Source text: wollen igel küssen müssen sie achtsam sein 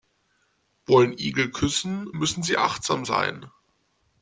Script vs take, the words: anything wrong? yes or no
no